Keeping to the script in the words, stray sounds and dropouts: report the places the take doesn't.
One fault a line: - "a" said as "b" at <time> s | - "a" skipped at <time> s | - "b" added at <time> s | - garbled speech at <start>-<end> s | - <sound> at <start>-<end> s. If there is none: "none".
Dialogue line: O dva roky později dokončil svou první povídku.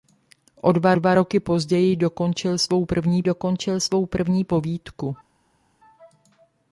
- "dva" added at 0.9 s
- "dokončil svou první" added at 3.2 s